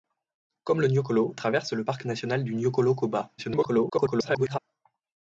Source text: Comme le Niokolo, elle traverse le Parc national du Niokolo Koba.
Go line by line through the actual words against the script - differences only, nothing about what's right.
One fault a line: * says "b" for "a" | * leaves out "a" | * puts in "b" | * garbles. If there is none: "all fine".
* leaves out "elle"
* garbles